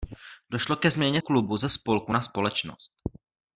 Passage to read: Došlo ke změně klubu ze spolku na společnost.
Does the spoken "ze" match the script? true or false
true